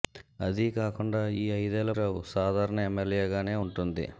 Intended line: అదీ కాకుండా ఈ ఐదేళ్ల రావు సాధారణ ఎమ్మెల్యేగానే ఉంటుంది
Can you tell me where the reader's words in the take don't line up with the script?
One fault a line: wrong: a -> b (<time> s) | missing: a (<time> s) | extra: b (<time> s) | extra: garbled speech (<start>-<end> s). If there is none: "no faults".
no faults